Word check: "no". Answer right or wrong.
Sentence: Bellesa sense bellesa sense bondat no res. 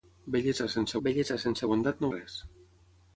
right